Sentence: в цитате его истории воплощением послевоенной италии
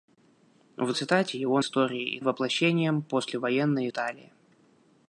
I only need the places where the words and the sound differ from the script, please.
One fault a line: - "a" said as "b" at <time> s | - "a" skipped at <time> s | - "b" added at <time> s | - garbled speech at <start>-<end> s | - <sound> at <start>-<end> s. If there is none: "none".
none